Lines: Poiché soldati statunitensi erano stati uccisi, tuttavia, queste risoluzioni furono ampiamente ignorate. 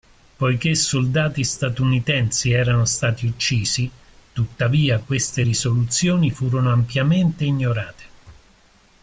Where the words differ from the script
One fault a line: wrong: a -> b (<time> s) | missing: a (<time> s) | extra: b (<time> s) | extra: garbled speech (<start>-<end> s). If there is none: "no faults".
no faults